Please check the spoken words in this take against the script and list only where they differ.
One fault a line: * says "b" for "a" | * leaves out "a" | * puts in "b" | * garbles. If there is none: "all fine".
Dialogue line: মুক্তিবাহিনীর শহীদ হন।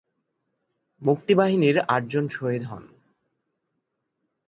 * puts in "আটজন"